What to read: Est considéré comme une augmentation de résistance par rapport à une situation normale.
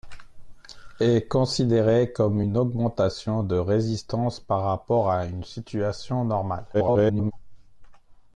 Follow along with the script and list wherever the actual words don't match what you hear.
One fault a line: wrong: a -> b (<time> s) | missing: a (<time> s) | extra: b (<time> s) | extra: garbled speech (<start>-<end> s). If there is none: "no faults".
extra: garbled speech (6.7-7.3 s)